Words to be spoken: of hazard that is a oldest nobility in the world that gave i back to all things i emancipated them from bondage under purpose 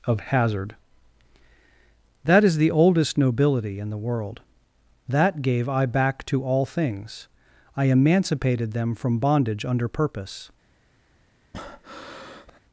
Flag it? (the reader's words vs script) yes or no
yes